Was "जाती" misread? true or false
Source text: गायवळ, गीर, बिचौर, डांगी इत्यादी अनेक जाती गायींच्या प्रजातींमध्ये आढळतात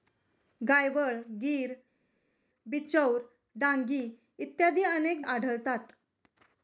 true